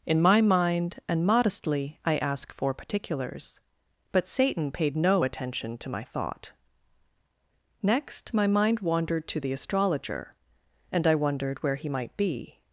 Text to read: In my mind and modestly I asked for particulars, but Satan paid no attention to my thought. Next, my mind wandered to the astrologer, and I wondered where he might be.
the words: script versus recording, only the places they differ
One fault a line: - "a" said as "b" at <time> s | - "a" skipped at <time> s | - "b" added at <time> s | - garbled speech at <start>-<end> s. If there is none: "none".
- "asked" said as "ask" at 2.2 s